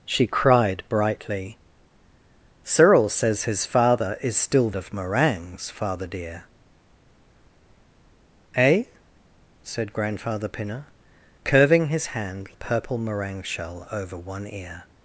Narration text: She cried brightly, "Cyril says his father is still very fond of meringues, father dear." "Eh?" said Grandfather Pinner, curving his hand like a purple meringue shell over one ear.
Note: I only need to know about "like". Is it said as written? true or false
false